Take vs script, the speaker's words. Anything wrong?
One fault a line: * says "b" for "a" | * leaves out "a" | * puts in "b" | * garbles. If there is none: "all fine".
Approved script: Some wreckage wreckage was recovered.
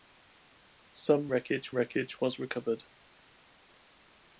all fine